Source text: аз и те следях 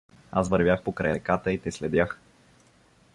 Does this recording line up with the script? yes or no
no